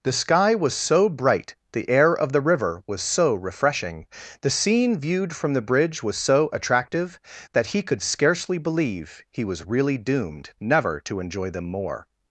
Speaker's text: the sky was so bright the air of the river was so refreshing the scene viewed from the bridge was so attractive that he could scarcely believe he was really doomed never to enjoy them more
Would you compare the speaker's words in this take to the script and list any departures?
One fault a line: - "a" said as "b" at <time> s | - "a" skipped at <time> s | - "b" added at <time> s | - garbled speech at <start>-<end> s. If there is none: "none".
none